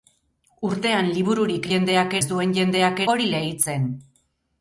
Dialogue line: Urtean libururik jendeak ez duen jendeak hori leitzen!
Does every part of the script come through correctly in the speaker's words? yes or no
yes